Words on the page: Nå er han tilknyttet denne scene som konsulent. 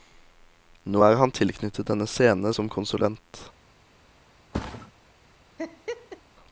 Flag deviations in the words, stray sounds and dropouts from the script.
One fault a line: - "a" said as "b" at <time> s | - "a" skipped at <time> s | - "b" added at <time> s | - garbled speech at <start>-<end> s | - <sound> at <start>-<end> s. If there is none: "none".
- thud at 4.5-4.9 s
- laugh at 5.6-6.2 s